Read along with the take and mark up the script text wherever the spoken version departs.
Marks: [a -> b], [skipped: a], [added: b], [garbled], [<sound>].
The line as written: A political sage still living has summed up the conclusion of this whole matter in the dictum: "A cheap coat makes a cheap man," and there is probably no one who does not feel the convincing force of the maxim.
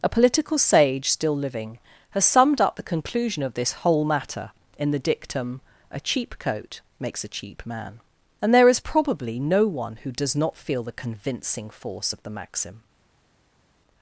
A political sage still living has summed up the conclusion of this whole matter in the dictum: "A cheap coat makes a cheap man," and there is probably no one who does not feel the convincing force of the maxim.